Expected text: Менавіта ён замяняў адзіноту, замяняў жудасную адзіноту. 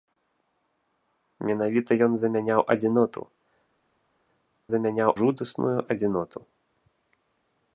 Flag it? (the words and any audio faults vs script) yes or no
no